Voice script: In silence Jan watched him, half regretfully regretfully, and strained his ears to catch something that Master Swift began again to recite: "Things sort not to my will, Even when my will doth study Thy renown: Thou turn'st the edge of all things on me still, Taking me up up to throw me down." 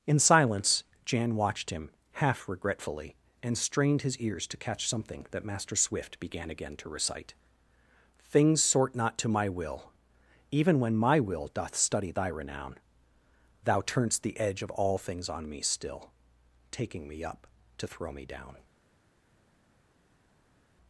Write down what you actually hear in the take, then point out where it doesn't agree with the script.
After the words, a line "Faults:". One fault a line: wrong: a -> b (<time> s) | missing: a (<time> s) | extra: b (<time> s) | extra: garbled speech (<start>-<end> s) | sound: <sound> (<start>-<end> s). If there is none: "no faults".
In silence Jan watched him, half regretfully, and strained his ears to catch something that Master Swift began again to recite: "Things sort not to my will, Even when my will doth study Thy renown: Thou turn'st the edge of all things on me still, Taking me up to throw me down."
Faults:
missing: regretfully (3.1 s)
missing: up (17.4 s)